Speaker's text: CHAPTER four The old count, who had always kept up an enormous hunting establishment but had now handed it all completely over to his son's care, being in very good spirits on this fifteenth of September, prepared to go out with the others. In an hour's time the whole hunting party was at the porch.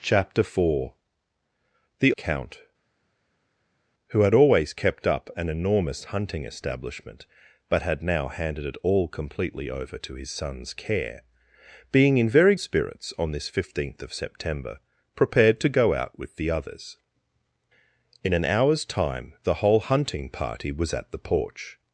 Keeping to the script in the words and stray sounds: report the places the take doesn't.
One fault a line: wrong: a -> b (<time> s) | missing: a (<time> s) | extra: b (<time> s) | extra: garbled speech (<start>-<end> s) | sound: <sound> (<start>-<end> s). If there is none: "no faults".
missing: old (2.1 s)
missing: good (12.5 s)